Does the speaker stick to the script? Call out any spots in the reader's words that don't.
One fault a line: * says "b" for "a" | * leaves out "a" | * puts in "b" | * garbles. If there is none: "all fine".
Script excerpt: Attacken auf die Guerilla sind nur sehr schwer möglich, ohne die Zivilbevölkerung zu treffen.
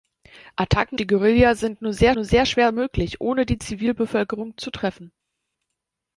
* leaves out "auf"
* puts in "nur sehr"